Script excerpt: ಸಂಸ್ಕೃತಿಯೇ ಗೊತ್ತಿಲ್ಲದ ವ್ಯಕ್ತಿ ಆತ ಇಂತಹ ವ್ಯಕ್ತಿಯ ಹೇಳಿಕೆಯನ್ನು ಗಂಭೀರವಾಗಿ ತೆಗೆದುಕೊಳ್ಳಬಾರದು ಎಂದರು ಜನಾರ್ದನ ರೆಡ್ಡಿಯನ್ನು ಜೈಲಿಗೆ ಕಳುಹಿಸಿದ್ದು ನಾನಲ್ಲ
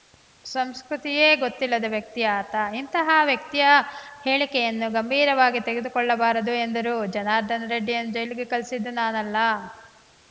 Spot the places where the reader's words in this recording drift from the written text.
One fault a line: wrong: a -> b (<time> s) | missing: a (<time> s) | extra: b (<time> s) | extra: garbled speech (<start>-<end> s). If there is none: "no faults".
no faults